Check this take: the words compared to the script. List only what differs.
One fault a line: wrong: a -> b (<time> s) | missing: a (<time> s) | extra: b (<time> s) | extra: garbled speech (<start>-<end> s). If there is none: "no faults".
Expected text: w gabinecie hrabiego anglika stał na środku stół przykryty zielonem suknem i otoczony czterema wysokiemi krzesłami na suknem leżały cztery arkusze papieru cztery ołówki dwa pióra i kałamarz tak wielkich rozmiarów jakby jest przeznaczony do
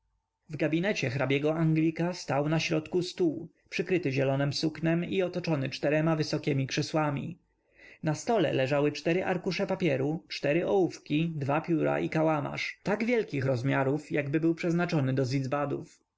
wrong: suknem -> stole (8.2 s)
wrong: jest -> był (14.4 s)